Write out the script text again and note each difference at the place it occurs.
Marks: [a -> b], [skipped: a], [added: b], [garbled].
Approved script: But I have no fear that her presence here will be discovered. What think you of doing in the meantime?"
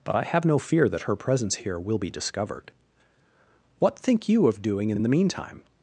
But I have no fear that her presence here will be discovered. What think you of doing in [added: in] the meantime?"